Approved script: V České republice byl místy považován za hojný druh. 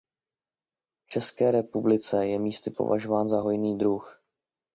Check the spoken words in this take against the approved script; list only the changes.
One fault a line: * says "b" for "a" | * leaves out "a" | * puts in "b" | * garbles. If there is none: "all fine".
* says "je" for "byl"